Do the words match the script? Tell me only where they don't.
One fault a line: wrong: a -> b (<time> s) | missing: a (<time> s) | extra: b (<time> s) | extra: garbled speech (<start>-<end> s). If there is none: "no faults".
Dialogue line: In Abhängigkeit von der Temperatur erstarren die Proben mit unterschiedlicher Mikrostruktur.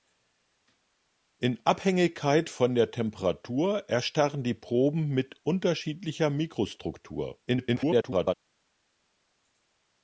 extra: garbled speech (7.5-8.3 s)